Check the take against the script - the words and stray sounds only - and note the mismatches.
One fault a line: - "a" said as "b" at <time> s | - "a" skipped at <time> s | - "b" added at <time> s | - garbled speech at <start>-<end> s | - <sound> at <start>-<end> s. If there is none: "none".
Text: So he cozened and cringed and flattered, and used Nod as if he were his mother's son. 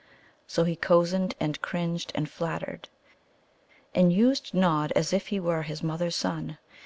none